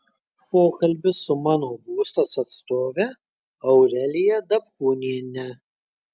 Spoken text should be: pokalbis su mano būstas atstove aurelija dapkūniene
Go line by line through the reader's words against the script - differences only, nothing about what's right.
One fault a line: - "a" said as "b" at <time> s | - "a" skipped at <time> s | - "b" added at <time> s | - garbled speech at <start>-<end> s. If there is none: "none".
none